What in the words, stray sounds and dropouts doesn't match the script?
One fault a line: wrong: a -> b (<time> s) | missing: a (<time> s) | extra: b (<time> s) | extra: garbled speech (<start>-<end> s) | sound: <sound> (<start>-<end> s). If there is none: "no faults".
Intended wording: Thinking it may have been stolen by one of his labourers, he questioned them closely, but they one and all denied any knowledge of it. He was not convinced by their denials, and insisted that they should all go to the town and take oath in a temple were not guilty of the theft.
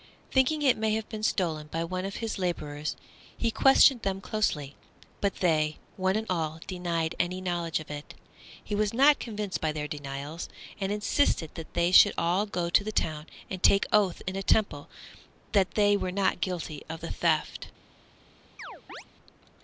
extra: that they (15.5 s)
sound: chirp (18.6-19.0 s)